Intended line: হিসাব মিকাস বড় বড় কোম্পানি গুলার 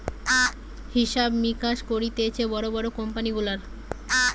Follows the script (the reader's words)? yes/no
no